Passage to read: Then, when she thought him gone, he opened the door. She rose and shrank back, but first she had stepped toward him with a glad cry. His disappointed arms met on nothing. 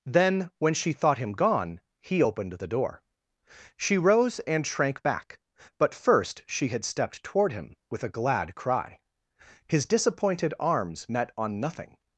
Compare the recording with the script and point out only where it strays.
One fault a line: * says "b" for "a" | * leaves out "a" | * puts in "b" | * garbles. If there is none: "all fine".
all fine